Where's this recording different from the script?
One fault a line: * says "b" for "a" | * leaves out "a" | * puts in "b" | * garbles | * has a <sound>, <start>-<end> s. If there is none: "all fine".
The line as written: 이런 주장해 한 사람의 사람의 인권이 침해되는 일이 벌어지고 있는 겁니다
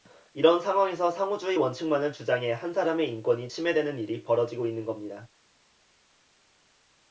* puts in "상황에서 상호주의 원칙만을"
* leaves out "사람의"